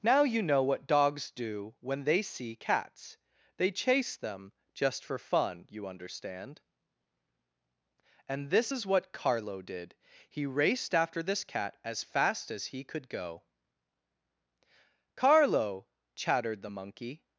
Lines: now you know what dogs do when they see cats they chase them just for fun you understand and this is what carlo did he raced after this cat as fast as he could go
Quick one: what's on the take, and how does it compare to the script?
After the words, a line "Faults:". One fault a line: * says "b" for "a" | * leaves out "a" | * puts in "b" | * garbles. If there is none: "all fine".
now you know what dogs do when they see cats they chase them just for fun you understand and this is what carlo did he raced after this cat as fast as he could go carlo chattered the monkey
Faults:
* puts in "carlo chattered the monkey"